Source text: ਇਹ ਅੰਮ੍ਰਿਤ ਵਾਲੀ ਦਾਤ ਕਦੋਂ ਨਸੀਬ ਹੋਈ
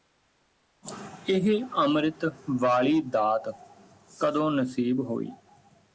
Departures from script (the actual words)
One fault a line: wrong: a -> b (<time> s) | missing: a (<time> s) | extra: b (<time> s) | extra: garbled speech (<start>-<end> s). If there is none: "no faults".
no faults